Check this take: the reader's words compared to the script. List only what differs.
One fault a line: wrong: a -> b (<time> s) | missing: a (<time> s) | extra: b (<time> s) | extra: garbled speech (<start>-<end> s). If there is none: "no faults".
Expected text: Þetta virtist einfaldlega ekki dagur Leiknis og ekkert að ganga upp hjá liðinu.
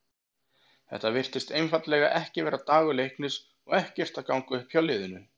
extra: vera (2.5 s)